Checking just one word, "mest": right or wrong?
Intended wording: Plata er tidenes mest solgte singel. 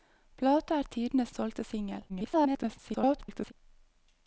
wrong